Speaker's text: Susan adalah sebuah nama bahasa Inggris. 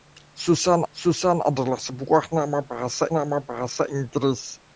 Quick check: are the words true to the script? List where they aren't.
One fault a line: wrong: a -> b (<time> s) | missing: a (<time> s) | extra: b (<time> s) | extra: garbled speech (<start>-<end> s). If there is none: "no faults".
extra: susan (0.9 s)
extra: nama bahasa (3.1 s)